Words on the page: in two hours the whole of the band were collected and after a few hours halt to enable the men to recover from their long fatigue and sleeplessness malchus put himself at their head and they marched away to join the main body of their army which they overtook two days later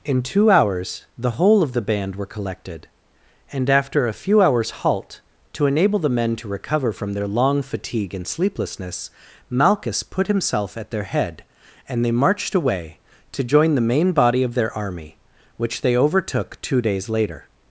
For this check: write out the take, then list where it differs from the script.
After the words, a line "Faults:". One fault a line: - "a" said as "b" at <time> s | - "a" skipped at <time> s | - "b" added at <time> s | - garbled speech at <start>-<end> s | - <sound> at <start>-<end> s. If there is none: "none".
in two hours the whole of the band were collected and after a few hours halt to enable the men to recover from their long fatigue and sleeplessness malchus put himself at their head and they marched away to join the main body of their army which they overtook two days later
Faults:
none